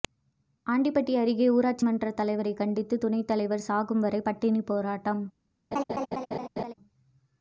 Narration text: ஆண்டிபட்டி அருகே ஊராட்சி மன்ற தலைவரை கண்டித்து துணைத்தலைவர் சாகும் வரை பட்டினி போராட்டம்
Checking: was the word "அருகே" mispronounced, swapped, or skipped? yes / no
no